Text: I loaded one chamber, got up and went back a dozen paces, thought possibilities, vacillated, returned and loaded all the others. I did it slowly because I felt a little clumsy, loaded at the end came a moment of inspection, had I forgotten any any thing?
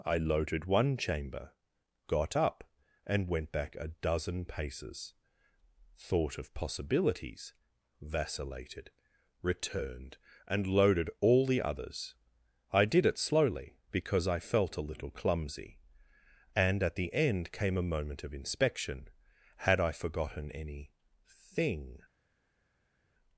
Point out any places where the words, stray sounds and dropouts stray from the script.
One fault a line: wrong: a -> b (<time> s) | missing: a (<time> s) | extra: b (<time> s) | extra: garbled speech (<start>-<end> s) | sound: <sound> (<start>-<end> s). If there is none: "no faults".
extra: of (6.4 s)
wrong: loaded -> and (16.6 s)
missing: any (20.9 s)